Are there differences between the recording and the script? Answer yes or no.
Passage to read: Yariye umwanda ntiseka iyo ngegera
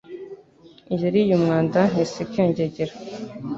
no